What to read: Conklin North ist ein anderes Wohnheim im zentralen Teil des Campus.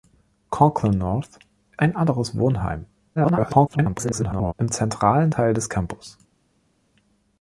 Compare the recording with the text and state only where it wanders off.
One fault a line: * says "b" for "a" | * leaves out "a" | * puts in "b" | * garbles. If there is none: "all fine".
* leaves out "ist"
* garbles